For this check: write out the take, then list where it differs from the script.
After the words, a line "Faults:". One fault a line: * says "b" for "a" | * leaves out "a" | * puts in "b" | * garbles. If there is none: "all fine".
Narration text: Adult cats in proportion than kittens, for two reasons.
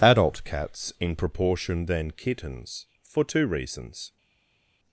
Adult cats in proportion than kittens, for two reasons.
Faults:
all fine